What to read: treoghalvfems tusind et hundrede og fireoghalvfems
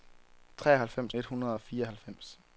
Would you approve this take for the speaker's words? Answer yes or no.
no